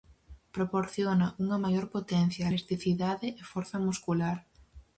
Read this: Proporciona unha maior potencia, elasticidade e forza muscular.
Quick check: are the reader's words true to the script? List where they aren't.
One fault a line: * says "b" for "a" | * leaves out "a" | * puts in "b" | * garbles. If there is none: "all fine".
all fine